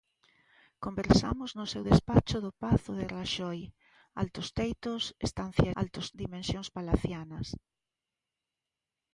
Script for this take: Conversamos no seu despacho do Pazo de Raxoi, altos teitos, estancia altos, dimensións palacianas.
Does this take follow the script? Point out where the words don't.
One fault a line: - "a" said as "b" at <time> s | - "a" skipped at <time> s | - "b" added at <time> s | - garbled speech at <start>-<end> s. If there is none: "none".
none